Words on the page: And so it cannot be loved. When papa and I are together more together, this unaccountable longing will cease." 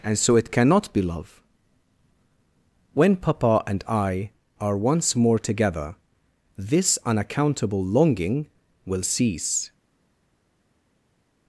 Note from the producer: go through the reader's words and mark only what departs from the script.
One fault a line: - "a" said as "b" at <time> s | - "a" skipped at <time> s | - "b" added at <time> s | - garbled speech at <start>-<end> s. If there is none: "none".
- "loved" said as "love" at 1.0 s
- "together" said as "once" at 4.8 s